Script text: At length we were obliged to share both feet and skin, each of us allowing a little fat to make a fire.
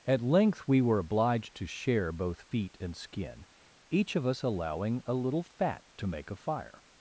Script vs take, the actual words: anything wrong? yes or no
no